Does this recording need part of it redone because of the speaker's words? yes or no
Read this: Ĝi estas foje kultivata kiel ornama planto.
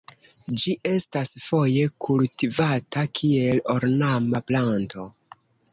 no